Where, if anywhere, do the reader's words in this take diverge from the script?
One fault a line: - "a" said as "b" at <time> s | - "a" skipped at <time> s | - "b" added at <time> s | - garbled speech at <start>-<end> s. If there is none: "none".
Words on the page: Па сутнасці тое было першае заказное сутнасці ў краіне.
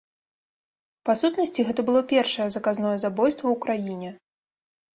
- "тое" said as "гэта" at 1.7 s
- "сутнасці" said as "забойства" at 3.1 s